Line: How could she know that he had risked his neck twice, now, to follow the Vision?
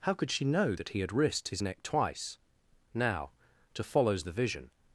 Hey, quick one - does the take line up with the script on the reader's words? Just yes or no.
no